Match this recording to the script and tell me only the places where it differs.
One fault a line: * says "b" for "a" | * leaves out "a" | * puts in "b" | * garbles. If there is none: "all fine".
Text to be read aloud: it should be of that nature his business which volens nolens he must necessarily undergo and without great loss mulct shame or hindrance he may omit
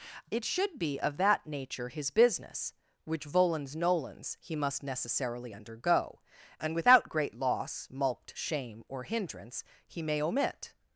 all fine